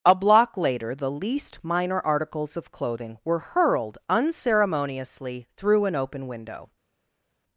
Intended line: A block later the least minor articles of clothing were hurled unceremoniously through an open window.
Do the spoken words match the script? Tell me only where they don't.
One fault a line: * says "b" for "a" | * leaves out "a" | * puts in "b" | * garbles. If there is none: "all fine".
all fine